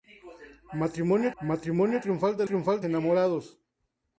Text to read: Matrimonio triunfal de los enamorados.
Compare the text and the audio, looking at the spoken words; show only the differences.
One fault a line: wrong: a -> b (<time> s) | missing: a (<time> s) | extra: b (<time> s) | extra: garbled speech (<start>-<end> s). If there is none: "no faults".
extra: matrimonio (1.4 s)
wrong: los -> triunfal (2.4 s)